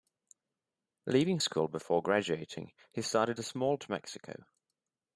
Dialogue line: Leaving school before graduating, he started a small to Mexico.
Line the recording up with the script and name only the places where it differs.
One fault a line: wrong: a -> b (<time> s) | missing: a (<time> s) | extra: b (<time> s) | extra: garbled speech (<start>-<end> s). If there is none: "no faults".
no faults